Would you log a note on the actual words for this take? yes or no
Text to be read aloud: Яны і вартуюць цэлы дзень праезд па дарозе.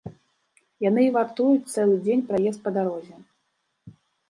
no